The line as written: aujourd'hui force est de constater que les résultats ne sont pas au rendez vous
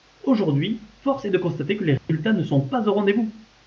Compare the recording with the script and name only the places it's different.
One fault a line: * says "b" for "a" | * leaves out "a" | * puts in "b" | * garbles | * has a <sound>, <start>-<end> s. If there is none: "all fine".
* has a dropout, 2.0-2.1 s